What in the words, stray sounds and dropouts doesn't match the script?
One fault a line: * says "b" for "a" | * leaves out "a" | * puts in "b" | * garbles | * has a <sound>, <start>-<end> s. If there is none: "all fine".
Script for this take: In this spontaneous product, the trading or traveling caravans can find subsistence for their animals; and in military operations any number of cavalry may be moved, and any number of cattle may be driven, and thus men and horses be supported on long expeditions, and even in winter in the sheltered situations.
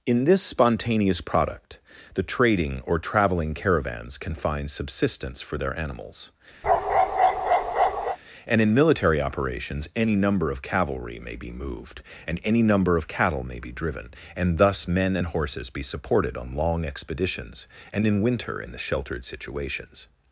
* has a bark, 6.6-8.2 s
* leaves out "even"